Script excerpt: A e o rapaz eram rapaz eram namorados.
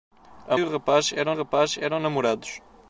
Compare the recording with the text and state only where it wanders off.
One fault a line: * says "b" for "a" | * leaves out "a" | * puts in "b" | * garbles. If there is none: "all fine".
all fine